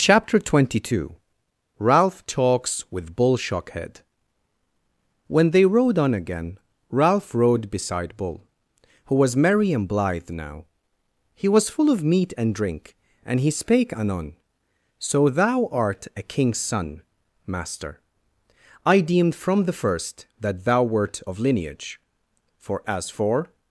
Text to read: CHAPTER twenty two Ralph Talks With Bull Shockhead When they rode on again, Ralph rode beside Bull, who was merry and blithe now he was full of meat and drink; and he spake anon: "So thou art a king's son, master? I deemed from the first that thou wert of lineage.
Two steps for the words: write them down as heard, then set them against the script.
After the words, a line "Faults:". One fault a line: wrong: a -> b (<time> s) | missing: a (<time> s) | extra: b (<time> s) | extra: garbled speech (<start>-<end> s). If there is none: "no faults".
CHAPTER twenty two Ralph Talks With Bull Shockhead When they rode on again, Ralph rode beside Bull, who was merry and blithe now he was full of meat and drink; and he spake anon: "So thou art a king's son, master? I deemed from the first that thou wert of lineage. For as for
Faults:
extra: For as for (22.6 s)